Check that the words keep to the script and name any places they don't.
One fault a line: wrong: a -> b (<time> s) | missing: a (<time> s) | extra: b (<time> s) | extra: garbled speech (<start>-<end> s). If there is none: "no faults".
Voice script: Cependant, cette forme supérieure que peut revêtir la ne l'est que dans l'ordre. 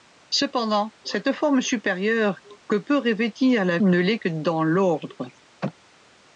no faults